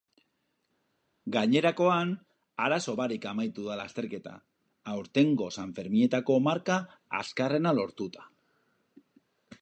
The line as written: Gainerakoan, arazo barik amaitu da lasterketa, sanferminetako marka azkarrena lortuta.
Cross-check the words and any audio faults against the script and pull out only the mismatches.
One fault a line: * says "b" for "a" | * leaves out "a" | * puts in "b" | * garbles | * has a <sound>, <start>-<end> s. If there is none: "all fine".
* puts in "aurtengo"